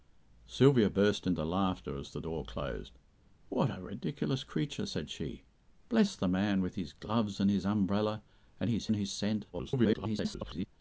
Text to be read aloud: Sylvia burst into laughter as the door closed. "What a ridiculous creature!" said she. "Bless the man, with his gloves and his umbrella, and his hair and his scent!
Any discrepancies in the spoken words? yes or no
yes